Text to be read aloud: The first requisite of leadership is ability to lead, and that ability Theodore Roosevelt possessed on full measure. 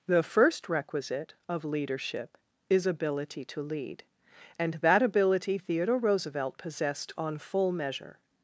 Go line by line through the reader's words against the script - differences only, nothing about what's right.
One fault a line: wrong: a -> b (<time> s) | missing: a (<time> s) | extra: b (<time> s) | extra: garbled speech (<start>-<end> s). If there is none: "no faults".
no faults